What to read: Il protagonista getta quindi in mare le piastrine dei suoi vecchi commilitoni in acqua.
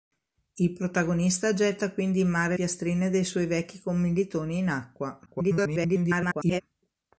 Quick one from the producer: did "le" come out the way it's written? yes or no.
no